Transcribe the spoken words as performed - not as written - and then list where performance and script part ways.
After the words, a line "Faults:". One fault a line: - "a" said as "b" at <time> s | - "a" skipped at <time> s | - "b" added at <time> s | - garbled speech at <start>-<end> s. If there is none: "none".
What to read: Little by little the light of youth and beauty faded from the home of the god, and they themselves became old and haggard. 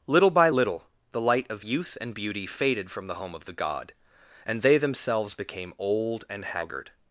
Little by little the light of youth and beauty faded from the home of the god, and they themselves became old and haggard.
Faults:
none